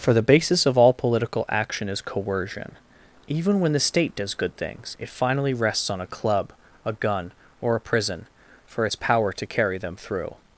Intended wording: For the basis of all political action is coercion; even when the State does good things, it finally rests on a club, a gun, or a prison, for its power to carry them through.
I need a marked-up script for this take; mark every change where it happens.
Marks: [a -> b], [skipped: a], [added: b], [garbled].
For the basis of all political action is coercion; even when the State does good things, it finally rests on a club, a gun, or a prison, for its power to carry them through.